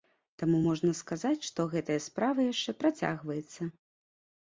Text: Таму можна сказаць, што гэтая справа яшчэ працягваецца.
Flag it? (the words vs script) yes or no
no